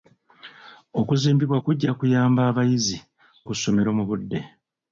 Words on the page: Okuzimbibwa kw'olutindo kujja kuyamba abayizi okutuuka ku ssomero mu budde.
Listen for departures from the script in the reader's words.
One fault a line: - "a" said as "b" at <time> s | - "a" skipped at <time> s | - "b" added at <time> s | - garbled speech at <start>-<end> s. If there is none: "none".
- "kw'olutindo" skipped at 1.6 s
- "okutuuka" skipped at 3.0 s